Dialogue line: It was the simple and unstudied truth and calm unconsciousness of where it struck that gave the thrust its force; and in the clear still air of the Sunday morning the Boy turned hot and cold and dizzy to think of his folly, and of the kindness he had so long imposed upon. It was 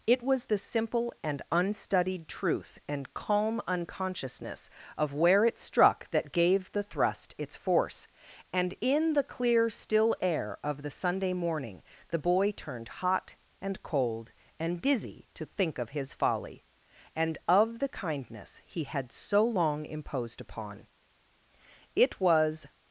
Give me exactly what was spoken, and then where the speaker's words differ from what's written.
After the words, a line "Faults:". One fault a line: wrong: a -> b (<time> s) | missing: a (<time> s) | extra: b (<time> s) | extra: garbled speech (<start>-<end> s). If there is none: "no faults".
It was the simple and unstudied truth and calm unconsciousness of where it struck that gave the thrust its force; and in the clear still air of the Sunday morning the Boy turned hot and cold and dizzy to think of his folly, and of the kindness he had so long imposed upon. It was
Faults:
no faults